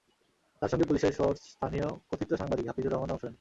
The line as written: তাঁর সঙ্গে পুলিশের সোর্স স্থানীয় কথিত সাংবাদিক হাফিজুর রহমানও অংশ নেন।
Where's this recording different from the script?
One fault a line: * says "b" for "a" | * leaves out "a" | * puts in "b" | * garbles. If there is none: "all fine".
all fine